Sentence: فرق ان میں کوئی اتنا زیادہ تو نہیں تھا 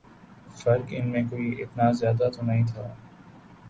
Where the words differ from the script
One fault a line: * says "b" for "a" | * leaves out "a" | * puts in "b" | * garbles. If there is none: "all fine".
all fine